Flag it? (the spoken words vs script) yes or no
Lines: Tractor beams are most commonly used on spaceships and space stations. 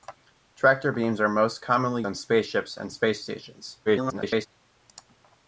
yes